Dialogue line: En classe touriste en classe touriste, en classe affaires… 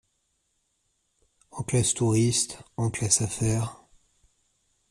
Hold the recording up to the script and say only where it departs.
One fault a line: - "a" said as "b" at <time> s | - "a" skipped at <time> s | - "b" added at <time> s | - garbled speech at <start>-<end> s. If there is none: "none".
- "touriste en classe" skipped at 3.2 s